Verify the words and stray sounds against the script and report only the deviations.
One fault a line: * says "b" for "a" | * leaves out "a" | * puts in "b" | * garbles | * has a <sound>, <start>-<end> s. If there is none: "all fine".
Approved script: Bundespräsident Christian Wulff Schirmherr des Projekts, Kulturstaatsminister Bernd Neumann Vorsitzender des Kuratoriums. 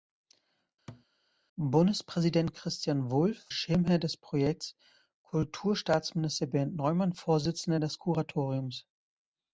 * has a thud, 0.9-1.1 s